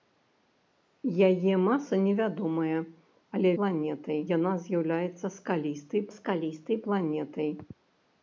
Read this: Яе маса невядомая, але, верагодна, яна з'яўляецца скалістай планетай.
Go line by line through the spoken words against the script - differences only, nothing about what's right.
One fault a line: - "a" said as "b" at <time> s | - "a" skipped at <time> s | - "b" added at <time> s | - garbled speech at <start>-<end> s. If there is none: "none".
- "верагодна" said as "планетай" at 3.6 s
- "скалістай" added at 6.2 s